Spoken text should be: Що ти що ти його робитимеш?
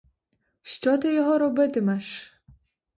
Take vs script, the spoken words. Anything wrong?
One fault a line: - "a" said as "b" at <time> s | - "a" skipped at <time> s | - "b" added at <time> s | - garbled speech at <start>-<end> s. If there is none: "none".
- "що ти" skipped at 1.1 s